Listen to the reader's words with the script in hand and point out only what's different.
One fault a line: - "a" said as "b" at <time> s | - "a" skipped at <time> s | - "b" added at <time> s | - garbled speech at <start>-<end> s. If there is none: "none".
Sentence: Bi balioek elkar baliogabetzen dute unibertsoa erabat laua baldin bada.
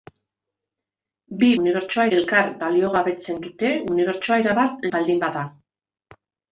- "balioek" said as "unibertsoa" at 1.6 s
- "laua" skipped at 4.9 s